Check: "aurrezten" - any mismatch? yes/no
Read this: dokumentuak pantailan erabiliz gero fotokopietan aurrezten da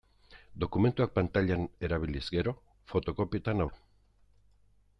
yes